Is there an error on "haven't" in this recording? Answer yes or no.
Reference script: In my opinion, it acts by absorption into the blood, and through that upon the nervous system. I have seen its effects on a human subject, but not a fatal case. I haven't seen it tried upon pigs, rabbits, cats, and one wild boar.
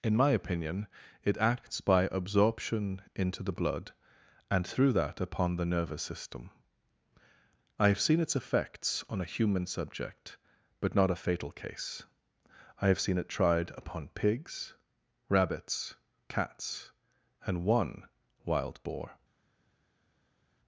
yes